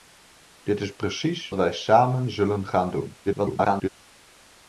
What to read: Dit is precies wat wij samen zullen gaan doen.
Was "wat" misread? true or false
true